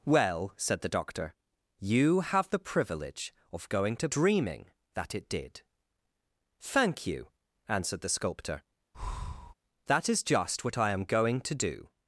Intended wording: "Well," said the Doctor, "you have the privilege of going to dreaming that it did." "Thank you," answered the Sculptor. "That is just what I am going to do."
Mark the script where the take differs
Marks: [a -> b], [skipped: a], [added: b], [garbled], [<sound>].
"Well," said the Doctor, "you have the privilege of going to dreaming that it did." "Thank you," answered the Sculptor. [breath] "That is just what I am going to do."